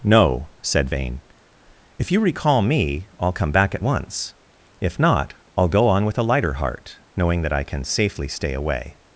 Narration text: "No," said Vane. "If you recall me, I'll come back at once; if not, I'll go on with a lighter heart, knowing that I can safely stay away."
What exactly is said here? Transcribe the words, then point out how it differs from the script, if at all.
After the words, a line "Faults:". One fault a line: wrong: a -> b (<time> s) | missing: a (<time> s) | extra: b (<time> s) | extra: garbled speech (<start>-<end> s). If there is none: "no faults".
"No," said Vane. "If you recall me, I'll come back at once; if not, I'll go on with a lighter heart, knowing that I can safely stay away."
Faults:
no faults